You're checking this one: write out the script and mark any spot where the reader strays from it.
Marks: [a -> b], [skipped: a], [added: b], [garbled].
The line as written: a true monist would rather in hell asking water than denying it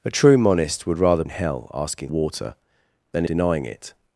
a true monist would rather in hell asking water than denying it